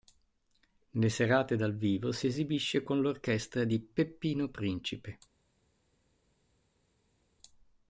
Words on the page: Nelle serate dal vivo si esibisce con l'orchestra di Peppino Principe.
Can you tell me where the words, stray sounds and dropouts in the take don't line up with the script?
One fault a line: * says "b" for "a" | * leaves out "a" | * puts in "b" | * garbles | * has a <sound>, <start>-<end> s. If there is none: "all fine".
all fine